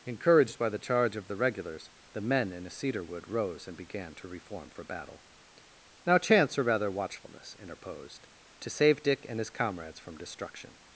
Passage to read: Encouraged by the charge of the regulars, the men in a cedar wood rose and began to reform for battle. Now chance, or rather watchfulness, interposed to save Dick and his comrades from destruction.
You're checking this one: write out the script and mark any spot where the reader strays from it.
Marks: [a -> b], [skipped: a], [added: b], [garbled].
Encouraged by the charge of the regulars, the men in a cedar wood rose and began to reform for battle. Now chance, or rather watchfulness, interposed to save Dick and his comrades from destruction.